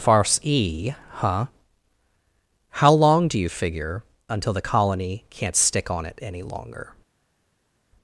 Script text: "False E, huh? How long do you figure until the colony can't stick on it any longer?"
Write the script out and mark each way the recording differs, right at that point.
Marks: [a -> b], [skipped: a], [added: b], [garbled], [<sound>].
["False -> Farce] E, huh? How long do you figure until the colony can't stick on it any longer?"